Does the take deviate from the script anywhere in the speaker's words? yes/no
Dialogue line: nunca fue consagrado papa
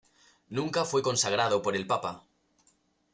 yes